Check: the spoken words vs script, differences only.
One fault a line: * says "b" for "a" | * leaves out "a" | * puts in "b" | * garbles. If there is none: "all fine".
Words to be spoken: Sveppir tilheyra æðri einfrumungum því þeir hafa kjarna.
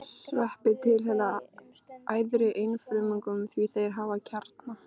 all fine